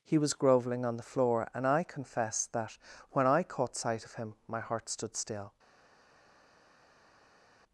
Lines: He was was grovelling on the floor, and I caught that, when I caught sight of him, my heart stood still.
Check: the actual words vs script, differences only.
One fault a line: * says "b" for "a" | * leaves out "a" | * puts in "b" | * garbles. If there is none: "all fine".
* leaves out "was"
* says "confess" for "caught"